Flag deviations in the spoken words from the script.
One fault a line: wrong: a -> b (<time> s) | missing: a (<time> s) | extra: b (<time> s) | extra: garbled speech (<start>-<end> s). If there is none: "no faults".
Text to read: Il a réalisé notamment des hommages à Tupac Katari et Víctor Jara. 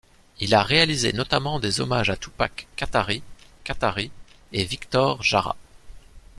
extra: Katari (3.6 s)